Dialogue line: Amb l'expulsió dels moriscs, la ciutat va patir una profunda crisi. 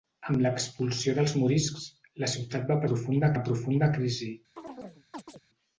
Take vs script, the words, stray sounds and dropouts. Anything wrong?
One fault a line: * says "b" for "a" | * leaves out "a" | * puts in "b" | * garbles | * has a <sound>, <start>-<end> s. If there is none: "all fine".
* says "profunda" for "patir"
* has a chirp, 4.6-5.4 s